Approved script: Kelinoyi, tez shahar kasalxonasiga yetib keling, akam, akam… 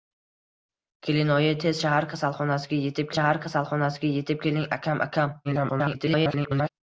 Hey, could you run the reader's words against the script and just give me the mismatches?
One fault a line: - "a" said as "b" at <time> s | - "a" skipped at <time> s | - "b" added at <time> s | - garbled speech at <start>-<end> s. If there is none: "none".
- "shahar kasalxonasiga yetib" added at 3.2 s
- garbled speech at 5.4-6.7 s